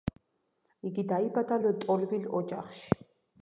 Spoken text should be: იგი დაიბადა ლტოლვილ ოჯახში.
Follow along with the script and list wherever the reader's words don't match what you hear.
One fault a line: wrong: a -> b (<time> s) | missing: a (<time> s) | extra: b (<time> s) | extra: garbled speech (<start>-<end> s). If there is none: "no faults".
no faults